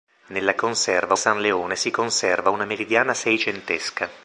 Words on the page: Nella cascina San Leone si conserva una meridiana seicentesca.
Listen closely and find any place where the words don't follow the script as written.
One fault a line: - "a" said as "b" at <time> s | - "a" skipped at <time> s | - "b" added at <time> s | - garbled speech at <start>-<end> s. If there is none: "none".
- "cascina" said as "conserva" at 0.6 s